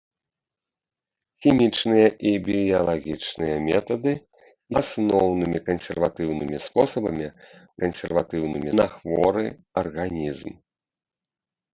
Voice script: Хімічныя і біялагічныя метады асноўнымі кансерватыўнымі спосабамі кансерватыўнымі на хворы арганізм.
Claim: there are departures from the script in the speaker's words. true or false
false